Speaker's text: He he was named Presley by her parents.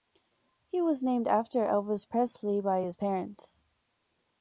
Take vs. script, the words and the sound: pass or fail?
fail